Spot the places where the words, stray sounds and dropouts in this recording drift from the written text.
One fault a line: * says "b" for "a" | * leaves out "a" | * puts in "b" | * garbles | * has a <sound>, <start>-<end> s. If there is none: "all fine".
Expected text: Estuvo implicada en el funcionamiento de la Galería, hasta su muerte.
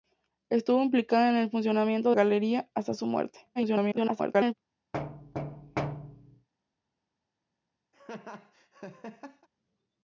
* leaves out "de la"
* garbles
* has a thud, 4.9-6.5 s
* has a laugh, 7.9-9.5 s